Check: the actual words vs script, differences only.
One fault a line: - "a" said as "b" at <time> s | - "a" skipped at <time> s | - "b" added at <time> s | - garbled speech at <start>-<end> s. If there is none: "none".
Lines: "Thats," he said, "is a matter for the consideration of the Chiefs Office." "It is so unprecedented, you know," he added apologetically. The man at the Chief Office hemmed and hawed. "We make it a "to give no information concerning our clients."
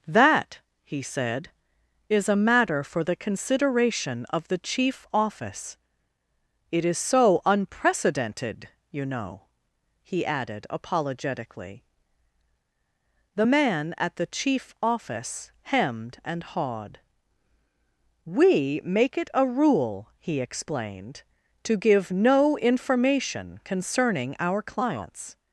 - "Thats" said as "That" at 0.1 s
- "Chiefs" said as "Chief" at 4.6 s
- "rule he explained" added at 19.4 s